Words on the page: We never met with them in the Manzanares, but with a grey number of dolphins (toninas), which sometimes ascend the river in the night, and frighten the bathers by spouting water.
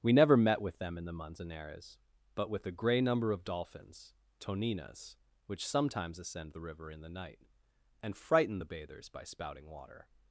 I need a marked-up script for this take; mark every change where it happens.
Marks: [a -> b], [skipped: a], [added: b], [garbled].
We never met with them in the Manzanares, but with a grey number of dolphins (toninas), which sometimes ascend the river in the night, and frighten the bathers by spouting water.